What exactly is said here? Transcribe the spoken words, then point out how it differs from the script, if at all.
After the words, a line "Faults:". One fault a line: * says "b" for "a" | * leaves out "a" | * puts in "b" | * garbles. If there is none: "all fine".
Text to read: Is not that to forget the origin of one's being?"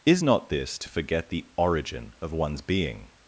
Is not this to forget the origin of one's being?"
Faults:
* says "this" for "that"